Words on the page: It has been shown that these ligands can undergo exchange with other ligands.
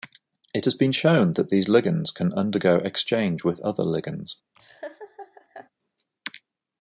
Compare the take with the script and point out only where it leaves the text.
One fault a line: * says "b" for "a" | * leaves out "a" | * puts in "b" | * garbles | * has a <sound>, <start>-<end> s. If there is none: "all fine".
* has a laugh, 4.5-5.7 s